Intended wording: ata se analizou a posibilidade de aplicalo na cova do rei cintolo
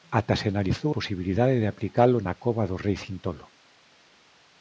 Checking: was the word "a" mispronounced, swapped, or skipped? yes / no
yes